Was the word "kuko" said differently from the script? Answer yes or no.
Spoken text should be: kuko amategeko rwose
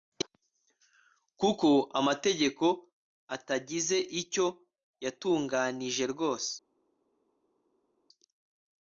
no